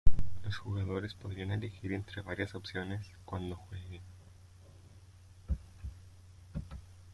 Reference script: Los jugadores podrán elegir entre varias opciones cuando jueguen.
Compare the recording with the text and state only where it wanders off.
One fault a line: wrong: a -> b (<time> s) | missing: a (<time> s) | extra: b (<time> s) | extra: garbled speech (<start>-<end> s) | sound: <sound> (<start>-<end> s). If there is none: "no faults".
no faults